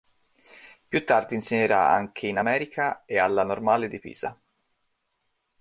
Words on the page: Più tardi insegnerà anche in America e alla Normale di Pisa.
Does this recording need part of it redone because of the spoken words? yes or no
no